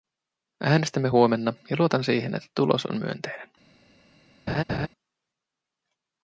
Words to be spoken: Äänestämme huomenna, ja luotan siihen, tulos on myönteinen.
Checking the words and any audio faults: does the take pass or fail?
fail